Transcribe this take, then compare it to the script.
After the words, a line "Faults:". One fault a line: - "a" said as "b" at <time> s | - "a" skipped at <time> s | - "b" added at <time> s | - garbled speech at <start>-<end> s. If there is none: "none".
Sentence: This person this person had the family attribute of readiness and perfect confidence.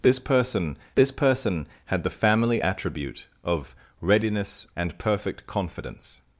This person this person had the family attribute of readiness and perfect confidence.
Faults:
none